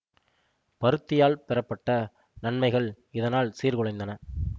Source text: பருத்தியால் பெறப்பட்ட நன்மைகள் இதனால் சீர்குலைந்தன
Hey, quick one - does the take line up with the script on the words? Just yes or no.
yes